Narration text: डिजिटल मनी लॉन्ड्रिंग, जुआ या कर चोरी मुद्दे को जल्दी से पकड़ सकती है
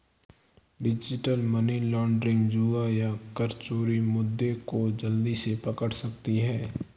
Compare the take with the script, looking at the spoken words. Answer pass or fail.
pass